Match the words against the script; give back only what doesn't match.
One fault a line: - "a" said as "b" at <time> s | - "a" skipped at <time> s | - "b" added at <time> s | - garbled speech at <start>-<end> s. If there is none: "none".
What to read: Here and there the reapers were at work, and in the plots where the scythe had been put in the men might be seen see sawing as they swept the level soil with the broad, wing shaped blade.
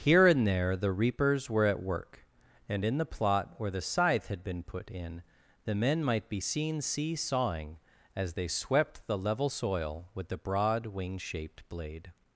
- "plots" said as "plot" at 3.0 s